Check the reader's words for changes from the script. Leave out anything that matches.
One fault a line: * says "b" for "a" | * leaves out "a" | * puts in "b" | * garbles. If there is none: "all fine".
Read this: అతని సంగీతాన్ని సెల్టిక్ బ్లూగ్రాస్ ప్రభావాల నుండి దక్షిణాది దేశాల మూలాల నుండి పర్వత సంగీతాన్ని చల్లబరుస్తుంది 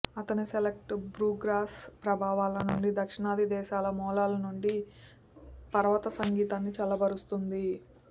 * leaves out "సంగీతాన్ని"